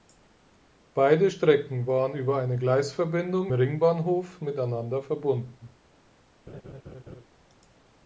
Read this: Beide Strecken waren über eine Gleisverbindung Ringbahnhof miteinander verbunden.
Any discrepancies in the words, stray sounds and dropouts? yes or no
yes